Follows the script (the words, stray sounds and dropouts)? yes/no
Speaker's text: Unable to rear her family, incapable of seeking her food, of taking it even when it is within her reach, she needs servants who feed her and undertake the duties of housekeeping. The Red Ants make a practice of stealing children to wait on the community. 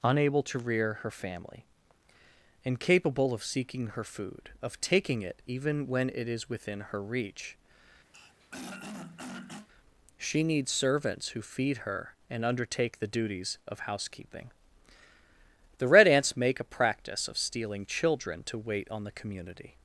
no